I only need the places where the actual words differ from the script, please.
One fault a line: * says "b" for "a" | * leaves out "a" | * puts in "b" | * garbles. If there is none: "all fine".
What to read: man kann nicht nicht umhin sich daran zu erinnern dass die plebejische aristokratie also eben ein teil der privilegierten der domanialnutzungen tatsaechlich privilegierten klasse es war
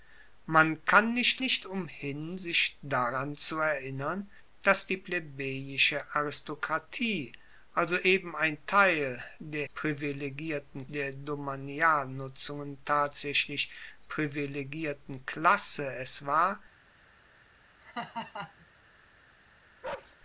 all fine